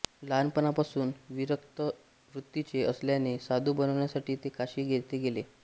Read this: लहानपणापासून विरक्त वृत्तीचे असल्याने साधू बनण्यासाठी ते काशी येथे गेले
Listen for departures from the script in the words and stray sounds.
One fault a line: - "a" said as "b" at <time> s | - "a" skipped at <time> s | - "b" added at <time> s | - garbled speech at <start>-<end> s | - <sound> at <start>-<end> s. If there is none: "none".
none